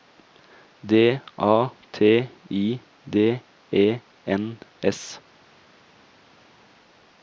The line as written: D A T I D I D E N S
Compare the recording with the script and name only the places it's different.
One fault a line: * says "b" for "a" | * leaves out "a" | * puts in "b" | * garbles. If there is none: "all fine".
* leaves out "I D"